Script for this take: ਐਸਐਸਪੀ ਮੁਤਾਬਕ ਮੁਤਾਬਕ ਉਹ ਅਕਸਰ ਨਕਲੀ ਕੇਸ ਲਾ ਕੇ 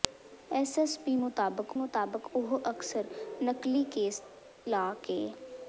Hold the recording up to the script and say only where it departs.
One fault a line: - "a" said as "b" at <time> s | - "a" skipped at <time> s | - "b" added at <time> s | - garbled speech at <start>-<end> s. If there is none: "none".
none